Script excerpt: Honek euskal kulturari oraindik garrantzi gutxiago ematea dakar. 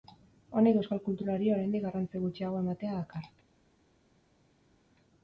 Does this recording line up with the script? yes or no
yes